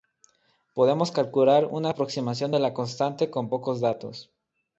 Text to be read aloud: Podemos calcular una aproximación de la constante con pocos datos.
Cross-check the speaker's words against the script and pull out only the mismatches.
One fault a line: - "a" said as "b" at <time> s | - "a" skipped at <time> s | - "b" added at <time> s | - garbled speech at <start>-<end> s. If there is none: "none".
none